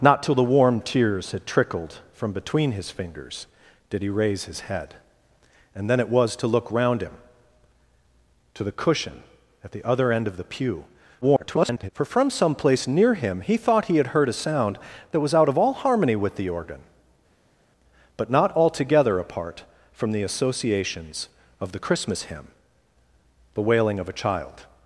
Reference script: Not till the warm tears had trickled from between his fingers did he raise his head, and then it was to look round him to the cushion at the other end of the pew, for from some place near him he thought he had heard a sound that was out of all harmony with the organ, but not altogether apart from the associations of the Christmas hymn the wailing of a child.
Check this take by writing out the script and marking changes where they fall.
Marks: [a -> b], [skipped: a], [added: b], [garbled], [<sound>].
Not till the warm tears had trickled from between his fingers did he raise his head, and then it was to look round him to the cushion at the other end of the pew, [garbled] for from some place near him he thought he had heard a sound that was out of all harmony with the organ, but not altogether apart from the associations of the Christmas hymn the wailing of a child.